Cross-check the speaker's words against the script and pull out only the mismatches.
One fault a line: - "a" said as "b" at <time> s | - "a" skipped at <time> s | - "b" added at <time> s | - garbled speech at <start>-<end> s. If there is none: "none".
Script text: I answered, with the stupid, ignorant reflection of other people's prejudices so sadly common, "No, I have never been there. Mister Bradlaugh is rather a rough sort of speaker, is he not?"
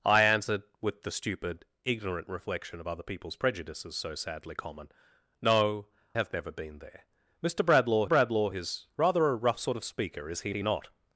- "I" skipped at 5.9 s
- "Bradlaugh" added at 8.0 s
- "he" added at 10.5 s